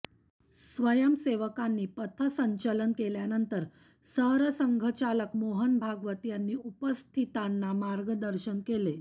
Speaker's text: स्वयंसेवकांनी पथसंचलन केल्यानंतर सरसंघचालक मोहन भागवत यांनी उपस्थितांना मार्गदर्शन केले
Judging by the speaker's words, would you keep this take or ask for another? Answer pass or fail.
pass